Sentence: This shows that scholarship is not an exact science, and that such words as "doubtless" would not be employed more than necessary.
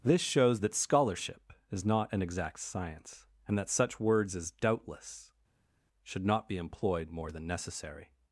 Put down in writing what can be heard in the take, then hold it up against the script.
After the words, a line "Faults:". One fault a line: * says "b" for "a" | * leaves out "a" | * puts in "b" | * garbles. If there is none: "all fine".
This shows that scholarship is not an exact science, and that such words as "doubtless" should not be employed more than necessary.
Faults:
* says "should" for "would"